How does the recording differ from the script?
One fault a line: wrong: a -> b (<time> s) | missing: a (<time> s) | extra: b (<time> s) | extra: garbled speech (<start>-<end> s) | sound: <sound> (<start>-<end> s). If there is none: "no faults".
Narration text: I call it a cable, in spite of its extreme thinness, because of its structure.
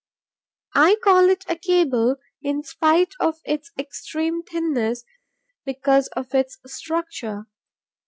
no faults